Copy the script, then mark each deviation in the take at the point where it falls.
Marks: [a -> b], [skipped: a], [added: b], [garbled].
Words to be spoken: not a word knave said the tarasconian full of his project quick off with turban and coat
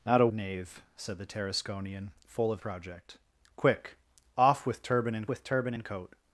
not a [skipped: word] knave said the tarasconian full of [skipped: his] project quick off with turban and [added: with turban and] coat